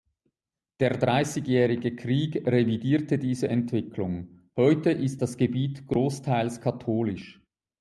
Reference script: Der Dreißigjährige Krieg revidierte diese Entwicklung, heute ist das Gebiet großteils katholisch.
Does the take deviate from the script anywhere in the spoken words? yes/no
no